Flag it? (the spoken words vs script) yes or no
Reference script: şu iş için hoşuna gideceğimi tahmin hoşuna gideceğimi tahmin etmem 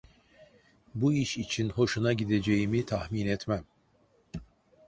yes